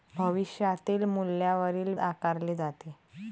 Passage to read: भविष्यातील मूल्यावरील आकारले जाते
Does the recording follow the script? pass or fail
pass